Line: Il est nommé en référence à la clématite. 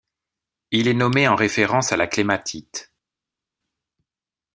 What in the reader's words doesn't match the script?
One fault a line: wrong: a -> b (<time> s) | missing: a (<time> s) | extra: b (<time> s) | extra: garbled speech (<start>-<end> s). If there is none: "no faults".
no faults